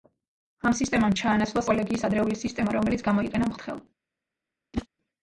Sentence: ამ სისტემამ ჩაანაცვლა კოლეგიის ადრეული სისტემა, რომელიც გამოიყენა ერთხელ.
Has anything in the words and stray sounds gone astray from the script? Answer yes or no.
yes